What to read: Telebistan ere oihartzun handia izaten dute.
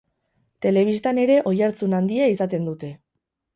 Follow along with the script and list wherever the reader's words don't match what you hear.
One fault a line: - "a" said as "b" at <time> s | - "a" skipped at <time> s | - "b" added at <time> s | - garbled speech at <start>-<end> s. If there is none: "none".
none